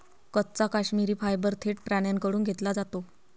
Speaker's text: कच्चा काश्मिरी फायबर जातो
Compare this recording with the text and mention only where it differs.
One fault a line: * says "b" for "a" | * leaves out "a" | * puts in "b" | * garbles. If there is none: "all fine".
* puts in "थेट प्राण्यांकडून घेतला"